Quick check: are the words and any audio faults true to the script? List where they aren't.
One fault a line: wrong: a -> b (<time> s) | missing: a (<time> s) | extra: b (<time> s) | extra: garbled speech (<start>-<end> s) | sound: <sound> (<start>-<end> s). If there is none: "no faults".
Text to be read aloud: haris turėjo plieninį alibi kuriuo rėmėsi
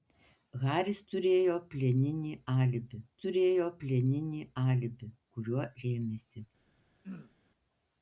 extra: turėjo plieninį alibi (3.2 s)
sound: throat clearing (7.0-7.3 s)